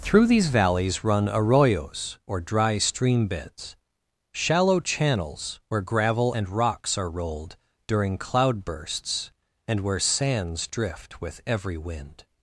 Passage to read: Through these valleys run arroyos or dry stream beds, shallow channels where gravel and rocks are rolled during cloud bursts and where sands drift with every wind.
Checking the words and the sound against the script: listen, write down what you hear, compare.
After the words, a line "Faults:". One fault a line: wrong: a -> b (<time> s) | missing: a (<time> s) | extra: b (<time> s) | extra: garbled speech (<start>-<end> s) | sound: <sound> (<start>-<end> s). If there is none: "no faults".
Through these valleys run arroyos or dry stream beds, shallow channels where gravel and rocks are rolled during cloud bursts and where sands drift with every wind.
Faults:
no faults